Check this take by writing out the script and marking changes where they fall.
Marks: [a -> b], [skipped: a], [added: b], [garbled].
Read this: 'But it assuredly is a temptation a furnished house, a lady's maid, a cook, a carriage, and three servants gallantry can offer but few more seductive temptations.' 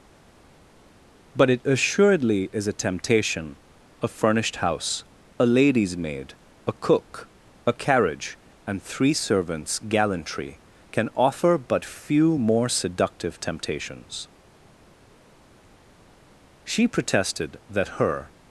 'But it assuredly is a temptation a furnished house, a lady's maid, a cook, a carriage, and three servants gallantry can offer but few more seductive temptations.' [added: She protested that her]